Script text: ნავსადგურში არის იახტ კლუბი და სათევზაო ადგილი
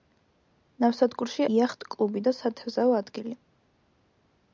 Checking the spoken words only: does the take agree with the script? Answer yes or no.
no